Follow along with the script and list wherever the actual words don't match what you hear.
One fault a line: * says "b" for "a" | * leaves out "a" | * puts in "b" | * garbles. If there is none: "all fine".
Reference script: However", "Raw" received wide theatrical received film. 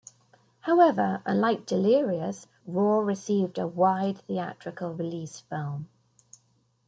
* puts in "unlike Delirious"
* puts in "a"
* says "release" for "received"